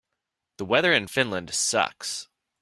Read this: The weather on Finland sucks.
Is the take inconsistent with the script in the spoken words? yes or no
yes